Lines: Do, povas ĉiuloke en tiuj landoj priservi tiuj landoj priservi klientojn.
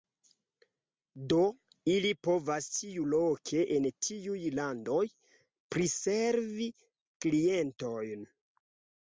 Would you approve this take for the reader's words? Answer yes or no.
no